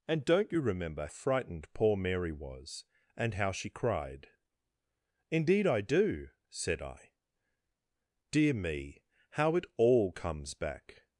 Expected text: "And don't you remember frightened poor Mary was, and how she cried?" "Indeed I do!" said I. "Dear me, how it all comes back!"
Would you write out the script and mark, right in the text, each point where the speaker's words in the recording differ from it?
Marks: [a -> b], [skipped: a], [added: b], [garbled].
"And don't you remember frightened poor Mary was, and how she cried?" "Indeed I do!" said I. "Dear me, how it all comes back!"